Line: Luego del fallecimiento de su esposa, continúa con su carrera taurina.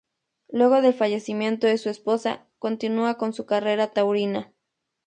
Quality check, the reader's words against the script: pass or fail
pass